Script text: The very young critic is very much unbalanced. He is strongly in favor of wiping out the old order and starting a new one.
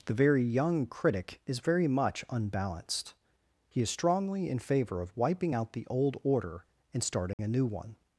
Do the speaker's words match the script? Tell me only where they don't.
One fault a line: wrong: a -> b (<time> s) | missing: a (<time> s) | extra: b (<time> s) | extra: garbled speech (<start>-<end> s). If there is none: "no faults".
no faults